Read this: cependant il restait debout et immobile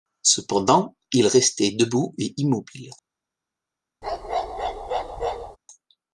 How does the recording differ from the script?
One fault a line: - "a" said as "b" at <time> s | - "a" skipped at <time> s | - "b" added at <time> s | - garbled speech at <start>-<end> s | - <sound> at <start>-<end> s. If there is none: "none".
- bark at 4.0-5.6 s